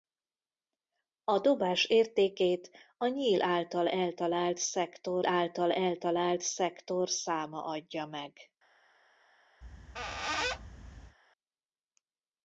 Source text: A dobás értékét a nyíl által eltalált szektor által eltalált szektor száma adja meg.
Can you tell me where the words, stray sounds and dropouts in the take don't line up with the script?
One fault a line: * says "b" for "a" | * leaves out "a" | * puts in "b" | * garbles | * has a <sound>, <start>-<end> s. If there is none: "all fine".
* has a squeak, 9.6-11.2 s